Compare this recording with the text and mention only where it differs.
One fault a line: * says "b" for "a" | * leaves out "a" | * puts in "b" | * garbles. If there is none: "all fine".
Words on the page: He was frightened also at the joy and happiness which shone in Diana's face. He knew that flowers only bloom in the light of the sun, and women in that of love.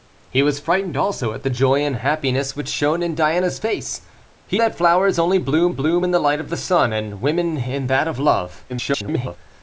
* leaves out "knew"
* puts in "bloom"
* garbles